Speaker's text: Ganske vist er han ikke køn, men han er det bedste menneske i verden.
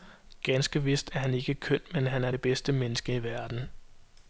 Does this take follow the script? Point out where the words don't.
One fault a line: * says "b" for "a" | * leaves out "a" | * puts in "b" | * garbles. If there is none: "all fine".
all fine